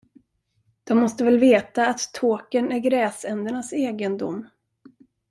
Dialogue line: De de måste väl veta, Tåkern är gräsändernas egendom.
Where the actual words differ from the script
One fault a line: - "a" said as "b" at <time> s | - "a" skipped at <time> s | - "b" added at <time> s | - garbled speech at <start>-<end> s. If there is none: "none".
- "de" skipped at 1.0 s
- "att" added at 1.9 s